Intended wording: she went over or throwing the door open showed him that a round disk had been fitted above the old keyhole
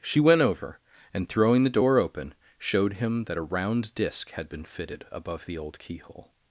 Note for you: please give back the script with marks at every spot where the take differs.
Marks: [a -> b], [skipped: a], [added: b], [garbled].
she went over [or -> and] throwing the door open showed him that a round disk had been fitted above the old keyhole